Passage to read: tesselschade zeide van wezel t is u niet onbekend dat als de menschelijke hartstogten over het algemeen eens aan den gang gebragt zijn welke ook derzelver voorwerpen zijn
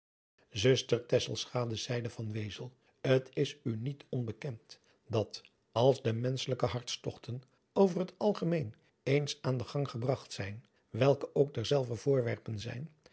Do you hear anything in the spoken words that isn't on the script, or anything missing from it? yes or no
no